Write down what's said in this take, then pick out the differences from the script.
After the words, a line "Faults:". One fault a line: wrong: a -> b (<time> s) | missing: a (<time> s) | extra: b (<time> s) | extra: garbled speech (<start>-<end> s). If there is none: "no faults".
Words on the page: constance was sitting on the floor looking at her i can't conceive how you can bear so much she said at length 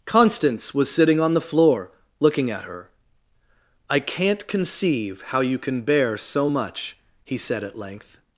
constance was sitting on the floor looking at her i can't conceive how you can bear so much he said at length
Faults:
wrong: she -> he (7.2 s)